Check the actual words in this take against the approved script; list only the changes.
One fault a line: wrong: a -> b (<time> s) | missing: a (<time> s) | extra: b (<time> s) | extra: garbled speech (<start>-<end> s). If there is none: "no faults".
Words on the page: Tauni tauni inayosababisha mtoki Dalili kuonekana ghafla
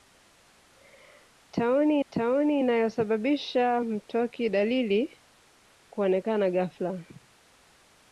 no faults